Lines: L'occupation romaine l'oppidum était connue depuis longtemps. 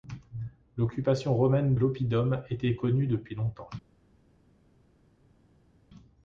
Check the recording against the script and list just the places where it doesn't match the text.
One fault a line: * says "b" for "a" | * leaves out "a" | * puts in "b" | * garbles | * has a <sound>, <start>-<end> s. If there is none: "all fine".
all fine